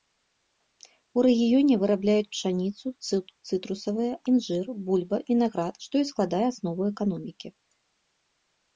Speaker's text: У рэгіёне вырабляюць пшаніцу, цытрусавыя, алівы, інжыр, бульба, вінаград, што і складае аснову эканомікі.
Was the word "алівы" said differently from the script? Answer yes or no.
yes